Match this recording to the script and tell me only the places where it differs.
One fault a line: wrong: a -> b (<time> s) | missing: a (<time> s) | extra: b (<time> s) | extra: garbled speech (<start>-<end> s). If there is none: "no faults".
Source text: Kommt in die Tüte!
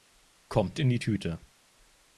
no faults